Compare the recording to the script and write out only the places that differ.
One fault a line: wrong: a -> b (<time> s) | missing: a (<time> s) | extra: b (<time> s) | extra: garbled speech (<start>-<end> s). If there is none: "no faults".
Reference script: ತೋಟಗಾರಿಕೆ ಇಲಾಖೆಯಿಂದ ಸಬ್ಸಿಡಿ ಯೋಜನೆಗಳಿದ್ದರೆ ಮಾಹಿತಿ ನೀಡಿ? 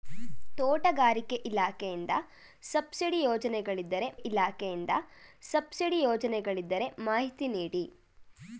extra: ಇಲಾಖೆಯಿಂದ ಸಬ್ಸಿಡಿ ಯೋಜನೆಗಳಿದ್ದರೆ (4.1 s)